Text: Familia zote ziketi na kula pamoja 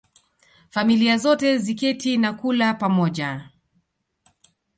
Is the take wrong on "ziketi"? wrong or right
right